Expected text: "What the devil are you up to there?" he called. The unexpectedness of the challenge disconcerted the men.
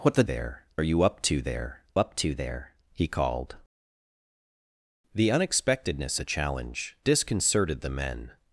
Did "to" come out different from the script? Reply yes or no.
no